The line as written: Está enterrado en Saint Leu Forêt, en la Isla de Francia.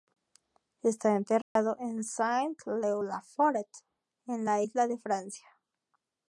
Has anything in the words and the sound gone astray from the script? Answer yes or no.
yes